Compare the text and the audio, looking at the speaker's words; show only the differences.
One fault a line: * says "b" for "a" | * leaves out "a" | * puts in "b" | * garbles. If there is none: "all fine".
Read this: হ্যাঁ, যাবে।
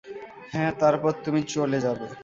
* puts in "তারপর তুমি চলে"